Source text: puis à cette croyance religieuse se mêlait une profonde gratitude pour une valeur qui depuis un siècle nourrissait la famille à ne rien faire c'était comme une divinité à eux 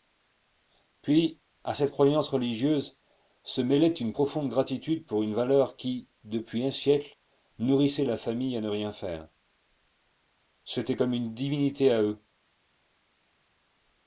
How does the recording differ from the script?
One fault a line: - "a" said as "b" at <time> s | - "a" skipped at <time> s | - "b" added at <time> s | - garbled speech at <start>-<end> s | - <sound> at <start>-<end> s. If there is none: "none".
none